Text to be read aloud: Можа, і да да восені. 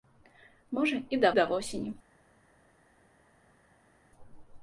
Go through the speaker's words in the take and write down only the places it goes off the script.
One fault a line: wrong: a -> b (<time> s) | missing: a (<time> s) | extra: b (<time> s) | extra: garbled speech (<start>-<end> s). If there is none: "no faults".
no faults